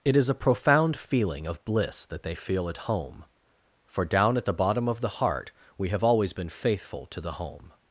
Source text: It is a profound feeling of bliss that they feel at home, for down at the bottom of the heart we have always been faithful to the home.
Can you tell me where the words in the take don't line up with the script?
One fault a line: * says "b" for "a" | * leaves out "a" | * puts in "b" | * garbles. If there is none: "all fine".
all fine